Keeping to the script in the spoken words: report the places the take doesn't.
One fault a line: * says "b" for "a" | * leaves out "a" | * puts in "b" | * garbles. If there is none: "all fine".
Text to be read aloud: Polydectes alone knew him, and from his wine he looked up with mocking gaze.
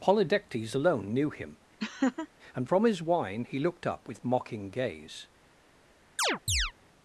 all fine